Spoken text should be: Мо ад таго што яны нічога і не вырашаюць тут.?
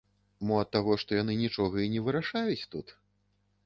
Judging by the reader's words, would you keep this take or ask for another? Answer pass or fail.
pass